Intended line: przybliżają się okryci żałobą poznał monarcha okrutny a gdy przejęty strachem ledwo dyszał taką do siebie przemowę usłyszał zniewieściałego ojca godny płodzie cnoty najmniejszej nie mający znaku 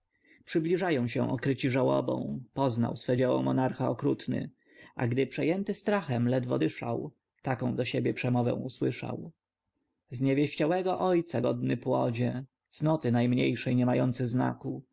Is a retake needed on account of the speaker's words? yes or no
yes